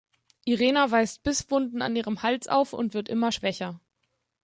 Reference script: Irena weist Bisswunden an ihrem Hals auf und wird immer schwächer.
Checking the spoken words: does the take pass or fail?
pass